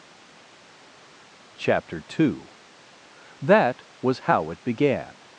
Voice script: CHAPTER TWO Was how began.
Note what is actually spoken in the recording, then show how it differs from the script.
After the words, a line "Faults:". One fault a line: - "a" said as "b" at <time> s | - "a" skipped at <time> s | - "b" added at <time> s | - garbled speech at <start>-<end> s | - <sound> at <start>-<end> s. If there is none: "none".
CHAPTER TWO That was how it began.
Faults:
- "That" added at 3.4 s
- "it" added at 4.5 s